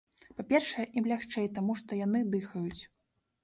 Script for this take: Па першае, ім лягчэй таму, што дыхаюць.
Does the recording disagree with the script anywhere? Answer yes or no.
yes